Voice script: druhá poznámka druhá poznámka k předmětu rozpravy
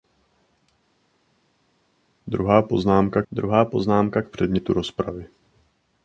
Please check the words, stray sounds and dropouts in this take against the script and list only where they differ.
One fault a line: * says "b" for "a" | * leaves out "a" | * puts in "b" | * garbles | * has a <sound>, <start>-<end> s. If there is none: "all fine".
all fine